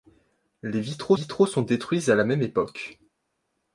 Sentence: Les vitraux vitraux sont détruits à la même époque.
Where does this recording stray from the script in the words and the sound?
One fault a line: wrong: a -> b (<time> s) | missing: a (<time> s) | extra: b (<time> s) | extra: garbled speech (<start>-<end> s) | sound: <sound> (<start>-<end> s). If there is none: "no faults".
no faults